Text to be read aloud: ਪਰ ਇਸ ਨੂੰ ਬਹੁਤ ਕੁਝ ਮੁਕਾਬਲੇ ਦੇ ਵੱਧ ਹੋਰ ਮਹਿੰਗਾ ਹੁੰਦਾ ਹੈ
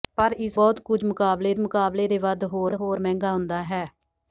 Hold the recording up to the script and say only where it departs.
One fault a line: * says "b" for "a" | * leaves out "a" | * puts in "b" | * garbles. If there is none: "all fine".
* leaves out "ਨੂੰ"
* puts in "ਮੁਕਾਬਲੇ"
* puts in "ਹੋਰ"